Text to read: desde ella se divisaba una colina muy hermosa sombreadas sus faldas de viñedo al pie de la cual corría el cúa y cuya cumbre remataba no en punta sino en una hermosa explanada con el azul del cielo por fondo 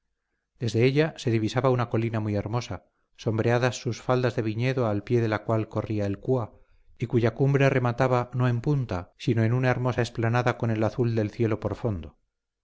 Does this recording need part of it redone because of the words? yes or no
no